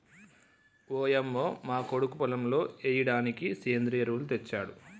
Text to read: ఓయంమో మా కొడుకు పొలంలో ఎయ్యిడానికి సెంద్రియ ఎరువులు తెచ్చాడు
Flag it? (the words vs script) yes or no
no